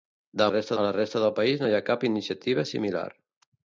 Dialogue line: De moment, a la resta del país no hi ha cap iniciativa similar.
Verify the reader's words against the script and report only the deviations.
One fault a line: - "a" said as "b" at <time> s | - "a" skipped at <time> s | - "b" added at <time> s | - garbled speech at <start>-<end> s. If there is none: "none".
- "moment" said as "resta" at 0.5 s